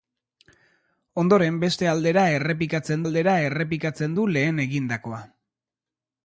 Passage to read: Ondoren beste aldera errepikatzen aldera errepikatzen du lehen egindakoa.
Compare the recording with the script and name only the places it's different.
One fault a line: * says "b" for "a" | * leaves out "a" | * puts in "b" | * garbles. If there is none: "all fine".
all fine